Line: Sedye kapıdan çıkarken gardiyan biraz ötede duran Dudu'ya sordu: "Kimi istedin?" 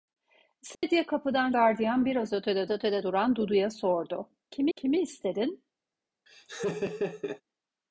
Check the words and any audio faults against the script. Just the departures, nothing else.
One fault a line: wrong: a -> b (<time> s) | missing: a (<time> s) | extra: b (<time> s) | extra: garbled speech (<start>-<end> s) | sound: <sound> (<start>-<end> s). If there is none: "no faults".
sound: dropout (0.7-0.8 s)
missing: çıkarken (1.5 s)
extra: ötede (2.7 s)
extra: kimi (4.7 s)
sound: laugh (6.3-7.4 s)